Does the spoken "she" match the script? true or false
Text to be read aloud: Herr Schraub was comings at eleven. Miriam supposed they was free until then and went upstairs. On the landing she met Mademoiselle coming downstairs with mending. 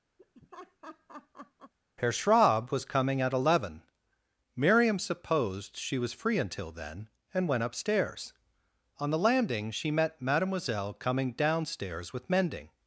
true